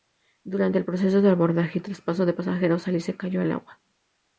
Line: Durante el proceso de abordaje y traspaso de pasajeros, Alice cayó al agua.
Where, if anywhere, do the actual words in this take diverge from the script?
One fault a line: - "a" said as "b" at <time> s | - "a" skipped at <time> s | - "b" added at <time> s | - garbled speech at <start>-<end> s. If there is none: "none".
none